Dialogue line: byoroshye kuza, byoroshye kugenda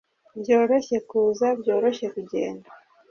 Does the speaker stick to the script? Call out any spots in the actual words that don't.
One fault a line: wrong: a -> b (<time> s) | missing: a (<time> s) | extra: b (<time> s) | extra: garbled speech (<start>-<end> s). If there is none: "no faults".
no faults